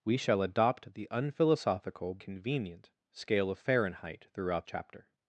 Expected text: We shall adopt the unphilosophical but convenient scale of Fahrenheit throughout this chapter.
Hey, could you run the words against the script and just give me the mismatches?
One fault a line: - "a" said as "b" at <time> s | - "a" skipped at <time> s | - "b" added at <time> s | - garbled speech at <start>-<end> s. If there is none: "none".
- "but" skipped at 2.2 s
- "this" skipped at 4.7 s